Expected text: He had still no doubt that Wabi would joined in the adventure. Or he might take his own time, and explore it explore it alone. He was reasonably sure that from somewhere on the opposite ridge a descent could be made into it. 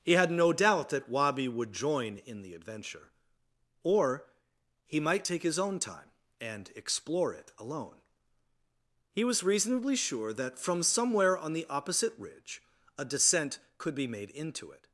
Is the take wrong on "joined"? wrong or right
wrong